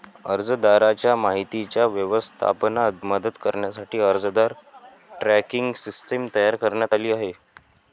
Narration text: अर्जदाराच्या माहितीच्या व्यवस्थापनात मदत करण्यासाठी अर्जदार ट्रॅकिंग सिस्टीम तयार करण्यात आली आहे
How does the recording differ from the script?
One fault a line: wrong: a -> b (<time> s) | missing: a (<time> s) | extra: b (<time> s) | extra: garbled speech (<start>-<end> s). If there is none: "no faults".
no faults